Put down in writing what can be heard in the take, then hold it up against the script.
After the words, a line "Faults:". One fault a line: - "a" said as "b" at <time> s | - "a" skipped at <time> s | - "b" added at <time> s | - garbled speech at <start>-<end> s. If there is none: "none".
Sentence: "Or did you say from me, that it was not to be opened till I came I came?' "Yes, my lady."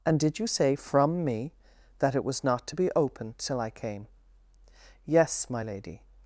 "And did you say from me, that it was not to be opened till I came?' "Yes, my lady."
Faults:
- "Or" said as "And" at 0.1 s
- "I came" skipped at 4.1 s